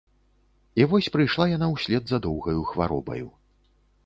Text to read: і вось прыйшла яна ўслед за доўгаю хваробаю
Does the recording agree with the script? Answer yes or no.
yes